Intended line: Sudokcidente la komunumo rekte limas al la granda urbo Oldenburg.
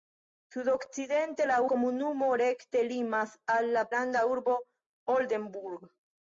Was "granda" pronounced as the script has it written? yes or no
yes